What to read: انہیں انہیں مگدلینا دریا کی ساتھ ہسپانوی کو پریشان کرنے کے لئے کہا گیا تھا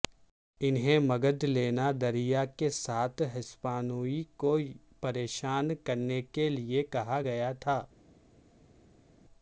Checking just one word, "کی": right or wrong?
wrong